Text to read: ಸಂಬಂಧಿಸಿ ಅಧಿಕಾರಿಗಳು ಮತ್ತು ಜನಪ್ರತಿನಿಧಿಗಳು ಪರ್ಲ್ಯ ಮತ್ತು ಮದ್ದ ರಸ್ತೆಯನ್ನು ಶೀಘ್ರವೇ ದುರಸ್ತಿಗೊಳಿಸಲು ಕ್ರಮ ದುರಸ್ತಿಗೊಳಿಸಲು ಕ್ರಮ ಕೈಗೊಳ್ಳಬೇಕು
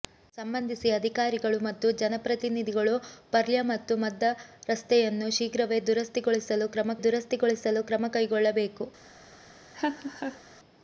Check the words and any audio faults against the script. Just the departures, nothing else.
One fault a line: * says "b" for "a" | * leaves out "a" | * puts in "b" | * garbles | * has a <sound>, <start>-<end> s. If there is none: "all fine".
* has a laugh, 9.7-10.4 s